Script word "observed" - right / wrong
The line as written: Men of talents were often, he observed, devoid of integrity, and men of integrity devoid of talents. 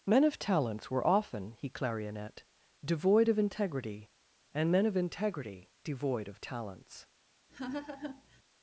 wrong